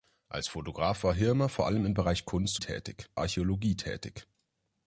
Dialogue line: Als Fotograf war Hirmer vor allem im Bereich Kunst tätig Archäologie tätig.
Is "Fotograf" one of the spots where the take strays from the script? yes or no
no